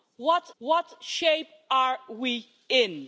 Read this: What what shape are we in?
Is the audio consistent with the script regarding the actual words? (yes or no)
yes